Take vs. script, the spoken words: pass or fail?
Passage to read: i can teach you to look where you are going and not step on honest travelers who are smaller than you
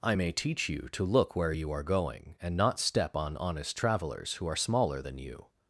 fail